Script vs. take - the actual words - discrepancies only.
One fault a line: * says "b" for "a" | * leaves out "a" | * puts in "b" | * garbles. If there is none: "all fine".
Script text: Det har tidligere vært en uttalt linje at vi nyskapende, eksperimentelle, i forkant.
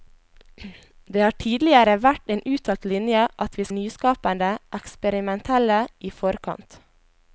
all fine